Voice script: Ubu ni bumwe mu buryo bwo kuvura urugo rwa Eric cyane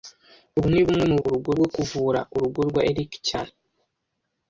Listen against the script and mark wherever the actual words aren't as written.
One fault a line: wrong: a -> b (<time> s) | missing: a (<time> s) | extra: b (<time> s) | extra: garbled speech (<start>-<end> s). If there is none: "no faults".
wrong: buryo -> urugo (1.2 s)